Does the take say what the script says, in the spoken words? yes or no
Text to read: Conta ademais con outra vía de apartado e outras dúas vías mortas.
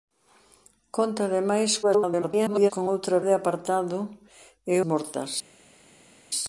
no